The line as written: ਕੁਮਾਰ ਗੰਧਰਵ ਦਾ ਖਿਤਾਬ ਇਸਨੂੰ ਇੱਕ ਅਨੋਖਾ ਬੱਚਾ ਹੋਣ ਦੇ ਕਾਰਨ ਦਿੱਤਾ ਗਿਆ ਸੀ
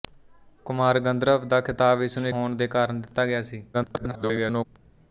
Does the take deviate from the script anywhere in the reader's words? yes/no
yes